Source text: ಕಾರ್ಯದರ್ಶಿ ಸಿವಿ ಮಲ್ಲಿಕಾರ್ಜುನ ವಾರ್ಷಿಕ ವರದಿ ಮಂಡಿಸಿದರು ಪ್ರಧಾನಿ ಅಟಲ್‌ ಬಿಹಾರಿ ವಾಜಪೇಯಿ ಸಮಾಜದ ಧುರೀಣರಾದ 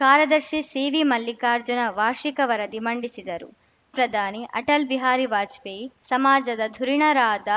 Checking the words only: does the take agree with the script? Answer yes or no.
yes